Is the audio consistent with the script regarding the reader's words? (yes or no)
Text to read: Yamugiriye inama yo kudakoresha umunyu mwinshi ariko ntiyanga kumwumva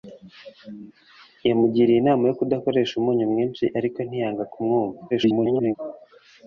no